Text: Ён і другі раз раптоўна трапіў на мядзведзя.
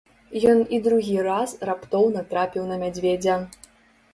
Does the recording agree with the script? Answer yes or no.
yes